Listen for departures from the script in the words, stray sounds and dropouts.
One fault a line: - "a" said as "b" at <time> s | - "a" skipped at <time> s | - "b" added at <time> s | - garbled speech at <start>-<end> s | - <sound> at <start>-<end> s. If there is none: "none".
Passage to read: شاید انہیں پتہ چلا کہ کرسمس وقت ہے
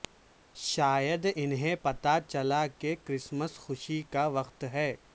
- "خوشی کا" added at 3.6 s